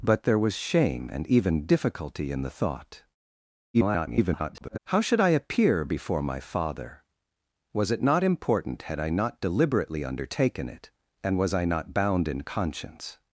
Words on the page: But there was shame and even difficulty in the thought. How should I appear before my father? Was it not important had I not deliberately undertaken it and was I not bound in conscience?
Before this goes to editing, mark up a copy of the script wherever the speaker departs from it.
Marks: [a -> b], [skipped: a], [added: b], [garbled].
But there was shame and even difficulty in the thought. [garbled] How should I appear before my father? Was it not important had I not deliberately undertaken it and was I not bound in conscience?